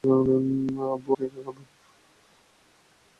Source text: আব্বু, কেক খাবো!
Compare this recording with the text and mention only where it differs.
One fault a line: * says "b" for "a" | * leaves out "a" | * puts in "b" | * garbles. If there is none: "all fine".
all fine